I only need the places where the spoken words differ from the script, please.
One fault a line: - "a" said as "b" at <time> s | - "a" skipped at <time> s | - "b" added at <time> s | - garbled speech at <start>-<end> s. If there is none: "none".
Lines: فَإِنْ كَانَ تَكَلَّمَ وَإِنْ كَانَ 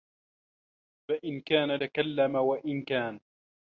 none